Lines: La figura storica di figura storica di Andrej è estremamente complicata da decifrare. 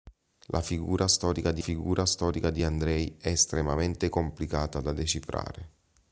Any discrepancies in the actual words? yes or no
no